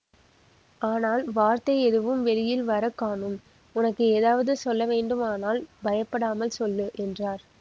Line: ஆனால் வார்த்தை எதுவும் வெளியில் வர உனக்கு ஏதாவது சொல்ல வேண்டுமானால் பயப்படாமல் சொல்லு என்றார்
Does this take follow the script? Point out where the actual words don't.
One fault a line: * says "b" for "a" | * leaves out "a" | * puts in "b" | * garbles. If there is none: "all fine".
* puts in "காணோம்"